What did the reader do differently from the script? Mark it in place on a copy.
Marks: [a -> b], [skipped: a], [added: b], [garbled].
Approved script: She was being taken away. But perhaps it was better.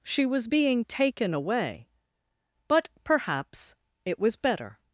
She was being taken away. But perhaps it was better.